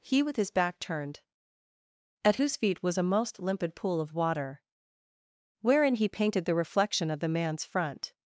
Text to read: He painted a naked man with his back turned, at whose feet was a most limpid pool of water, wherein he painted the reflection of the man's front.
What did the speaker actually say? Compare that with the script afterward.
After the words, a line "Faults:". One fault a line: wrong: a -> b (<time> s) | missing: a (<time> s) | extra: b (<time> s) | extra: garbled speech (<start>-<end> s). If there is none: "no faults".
He with his back turned, at whose feet was a most limpid pool of water, wherein he painted the reflection of the man's front.
Faults:
missing: painted a naked man (0.2 s)